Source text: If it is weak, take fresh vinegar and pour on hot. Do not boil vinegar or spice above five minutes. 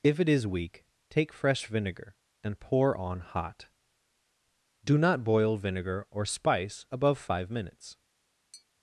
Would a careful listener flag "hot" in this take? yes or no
no